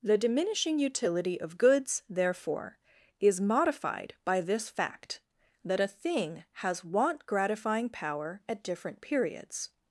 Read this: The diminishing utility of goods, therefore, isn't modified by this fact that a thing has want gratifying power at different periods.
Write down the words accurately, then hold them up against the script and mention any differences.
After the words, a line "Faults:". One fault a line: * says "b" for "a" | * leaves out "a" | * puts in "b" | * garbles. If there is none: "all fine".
The diminishing utility of goods, therefore, is modified by this fact that a thing has want gratifying power at different periods.
Faults:
* says "is" for "isn't"